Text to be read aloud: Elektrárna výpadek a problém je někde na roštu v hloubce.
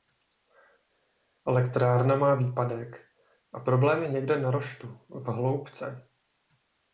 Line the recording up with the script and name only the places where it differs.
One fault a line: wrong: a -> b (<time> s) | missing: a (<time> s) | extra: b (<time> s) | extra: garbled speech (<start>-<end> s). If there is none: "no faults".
extra: má (2.2 s)